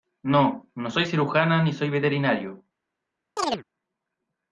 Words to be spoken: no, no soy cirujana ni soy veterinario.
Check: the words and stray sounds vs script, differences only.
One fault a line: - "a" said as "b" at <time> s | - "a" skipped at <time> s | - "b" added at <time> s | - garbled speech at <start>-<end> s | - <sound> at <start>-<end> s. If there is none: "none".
- chirp at 3.4-3.6 s